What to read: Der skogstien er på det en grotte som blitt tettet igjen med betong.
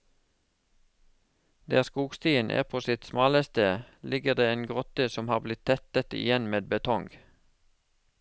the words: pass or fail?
fail